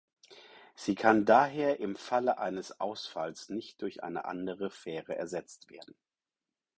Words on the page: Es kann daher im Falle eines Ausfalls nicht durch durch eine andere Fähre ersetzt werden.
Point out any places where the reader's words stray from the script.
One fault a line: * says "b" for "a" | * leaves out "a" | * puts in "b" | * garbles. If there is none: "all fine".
* says "Sie" for "Es"
* leaves out "durch"